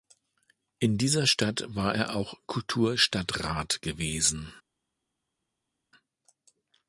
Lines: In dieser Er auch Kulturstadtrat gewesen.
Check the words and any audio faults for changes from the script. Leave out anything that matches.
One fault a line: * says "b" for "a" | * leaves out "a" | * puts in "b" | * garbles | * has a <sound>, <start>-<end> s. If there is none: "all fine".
* puts in "Stadt war"